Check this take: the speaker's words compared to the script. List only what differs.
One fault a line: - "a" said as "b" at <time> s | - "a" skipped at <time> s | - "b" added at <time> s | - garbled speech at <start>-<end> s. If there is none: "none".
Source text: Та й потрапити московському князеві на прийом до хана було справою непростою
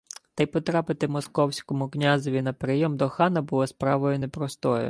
none